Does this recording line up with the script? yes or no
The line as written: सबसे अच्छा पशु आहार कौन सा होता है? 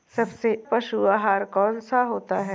no